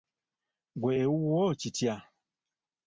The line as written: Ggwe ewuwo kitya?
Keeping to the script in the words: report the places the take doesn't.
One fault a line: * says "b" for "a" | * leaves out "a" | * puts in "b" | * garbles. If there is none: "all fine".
all fine